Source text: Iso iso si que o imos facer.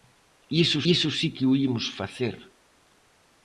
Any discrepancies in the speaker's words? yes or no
no